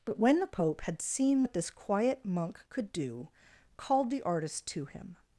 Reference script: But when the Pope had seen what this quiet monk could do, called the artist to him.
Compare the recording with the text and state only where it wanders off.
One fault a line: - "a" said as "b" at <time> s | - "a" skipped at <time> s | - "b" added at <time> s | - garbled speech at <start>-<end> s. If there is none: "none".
none